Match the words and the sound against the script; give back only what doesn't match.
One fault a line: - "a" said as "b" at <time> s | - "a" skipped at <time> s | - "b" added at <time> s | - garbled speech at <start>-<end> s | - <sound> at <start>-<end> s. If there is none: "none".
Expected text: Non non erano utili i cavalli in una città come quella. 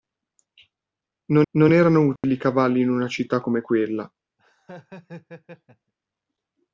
- dropout at 2.2-2.2 s
- laugh at 4.4-5.9 s